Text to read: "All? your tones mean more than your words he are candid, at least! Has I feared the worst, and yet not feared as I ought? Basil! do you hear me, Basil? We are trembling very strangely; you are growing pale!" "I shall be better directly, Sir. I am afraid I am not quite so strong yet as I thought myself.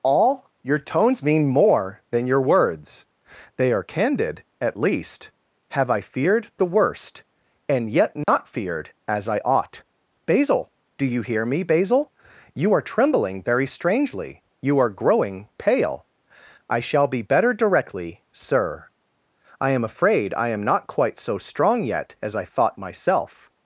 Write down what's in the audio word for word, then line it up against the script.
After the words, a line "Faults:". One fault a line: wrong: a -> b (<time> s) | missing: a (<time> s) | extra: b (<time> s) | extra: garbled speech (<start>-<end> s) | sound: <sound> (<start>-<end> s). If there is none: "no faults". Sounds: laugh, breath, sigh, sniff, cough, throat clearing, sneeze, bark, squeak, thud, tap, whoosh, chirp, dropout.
"All? your tones mean more than your words they are candid, at least! Have I feared the worst, and yet not feared as I ought? Basil! do you hear me, Basil? You are trembling very strangely; you are growing pale!" "I shall be better directly, Sir. I am afraid I am not quite so strong yet as I thought myself.
Faults:
wrong: he -> they (3.6 s)
wrong: Has -> Have (5.7 s)
sound: dropout (8.2-8.3 s)
wrong: We -> You (12.6 s)